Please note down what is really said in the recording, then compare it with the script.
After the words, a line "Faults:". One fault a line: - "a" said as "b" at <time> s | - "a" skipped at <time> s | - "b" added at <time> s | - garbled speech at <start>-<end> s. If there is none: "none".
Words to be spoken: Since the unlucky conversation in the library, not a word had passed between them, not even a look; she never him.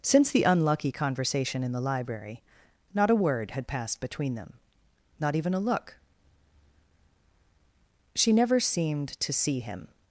Since the unlucky conversation in the library, not a word had passed between them, not even a look; she never seemed to see him.
Faults:
- "seemed to see" added at 8.6 s